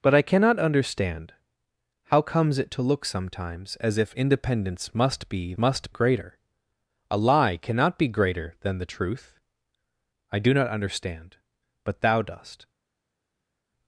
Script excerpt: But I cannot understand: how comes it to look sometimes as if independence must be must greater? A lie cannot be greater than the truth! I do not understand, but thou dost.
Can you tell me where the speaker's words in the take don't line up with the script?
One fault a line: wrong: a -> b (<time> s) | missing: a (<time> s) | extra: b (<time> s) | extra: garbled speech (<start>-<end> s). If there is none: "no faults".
no faults